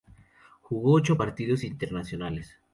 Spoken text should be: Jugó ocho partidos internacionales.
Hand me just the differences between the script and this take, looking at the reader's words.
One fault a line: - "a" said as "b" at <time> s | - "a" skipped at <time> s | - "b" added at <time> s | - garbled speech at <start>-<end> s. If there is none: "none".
none